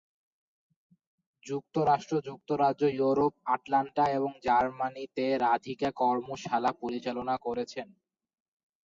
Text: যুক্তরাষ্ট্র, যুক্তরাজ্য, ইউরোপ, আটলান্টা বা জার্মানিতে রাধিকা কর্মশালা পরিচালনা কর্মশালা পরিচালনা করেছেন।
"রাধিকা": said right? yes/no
yes